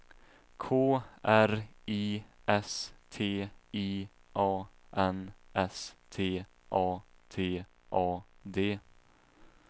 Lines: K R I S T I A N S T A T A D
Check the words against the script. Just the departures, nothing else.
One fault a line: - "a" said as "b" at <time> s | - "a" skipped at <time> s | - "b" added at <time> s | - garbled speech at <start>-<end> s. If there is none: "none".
none